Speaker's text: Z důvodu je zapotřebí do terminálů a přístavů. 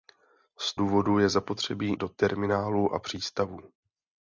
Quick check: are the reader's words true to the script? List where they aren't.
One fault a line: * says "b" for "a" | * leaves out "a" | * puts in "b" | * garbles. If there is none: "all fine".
all fine